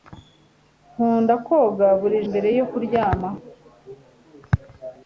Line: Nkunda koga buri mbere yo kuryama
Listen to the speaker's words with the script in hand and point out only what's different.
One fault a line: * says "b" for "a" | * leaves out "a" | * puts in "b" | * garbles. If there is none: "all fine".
all fine